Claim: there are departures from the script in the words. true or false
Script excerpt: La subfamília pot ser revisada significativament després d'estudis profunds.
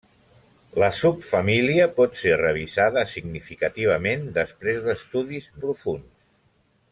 false